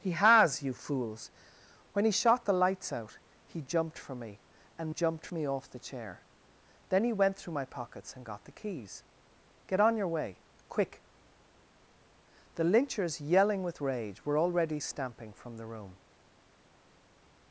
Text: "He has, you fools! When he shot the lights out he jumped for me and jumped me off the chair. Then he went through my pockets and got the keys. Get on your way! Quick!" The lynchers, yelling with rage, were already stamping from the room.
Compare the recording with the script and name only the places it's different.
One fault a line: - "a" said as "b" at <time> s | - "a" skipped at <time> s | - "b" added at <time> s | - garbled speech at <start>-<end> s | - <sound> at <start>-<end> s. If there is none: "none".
none